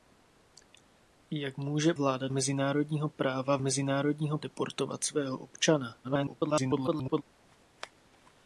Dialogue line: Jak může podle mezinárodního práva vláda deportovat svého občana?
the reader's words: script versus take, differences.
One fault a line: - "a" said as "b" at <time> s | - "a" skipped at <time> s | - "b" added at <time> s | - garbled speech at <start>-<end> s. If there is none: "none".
- "podle" said as "vláda" at 1.9 s
- "vláda" said as "mezinárodního" at 3.6 s
- garbled speech at 6.0-7.2 s